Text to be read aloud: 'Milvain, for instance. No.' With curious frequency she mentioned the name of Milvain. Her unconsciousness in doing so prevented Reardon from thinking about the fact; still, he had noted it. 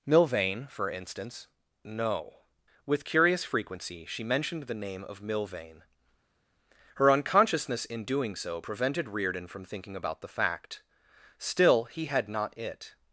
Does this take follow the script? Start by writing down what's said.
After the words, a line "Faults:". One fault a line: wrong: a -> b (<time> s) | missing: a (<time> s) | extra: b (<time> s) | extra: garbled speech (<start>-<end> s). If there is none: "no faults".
'Milvain, for instance. No.' With curious frequency she mentioned the name of Milvain. Her unconsciousness in doing so prevented Reardon from thinking about the fact; still, he had not it.
Faults:
wrong: noted -> not (12.3 s)